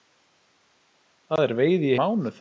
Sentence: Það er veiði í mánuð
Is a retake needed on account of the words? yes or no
no